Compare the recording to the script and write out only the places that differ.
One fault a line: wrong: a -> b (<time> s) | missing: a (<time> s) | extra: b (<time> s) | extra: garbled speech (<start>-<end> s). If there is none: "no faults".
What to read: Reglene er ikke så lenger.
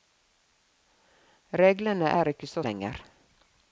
no faults